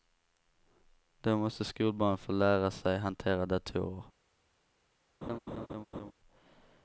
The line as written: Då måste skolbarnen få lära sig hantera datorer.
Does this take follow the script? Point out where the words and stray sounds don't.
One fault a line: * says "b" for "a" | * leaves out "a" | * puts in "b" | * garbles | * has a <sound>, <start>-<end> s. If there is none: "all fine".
* has a laugh, 5.2-6.1 s